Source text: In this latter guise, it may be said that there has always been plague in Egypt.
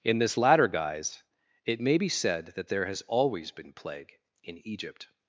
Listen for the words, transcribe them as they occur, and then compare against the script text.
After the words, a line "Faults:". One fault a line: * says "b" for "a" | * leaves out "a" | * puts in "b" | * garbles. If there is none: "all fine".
In this latter guise, it may be said that there has always been plague in Egypt.
Faults:
all fine